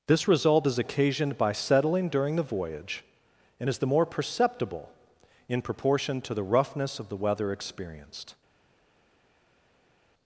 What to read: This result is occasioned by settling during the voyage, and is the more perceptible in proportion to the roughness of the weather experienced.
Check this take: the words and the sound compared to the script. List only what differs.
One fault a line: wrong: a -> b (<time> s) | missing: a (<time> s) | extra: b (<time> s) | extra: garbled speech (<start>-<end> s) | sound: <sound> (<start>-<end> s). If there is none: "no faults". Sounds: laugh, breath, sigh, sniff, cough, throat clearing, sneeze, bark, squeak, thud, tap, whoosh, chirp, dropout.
no faults